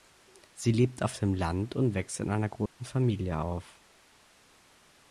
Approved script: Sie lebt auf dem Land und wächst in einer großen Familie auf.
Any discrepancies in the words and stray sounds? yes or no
yes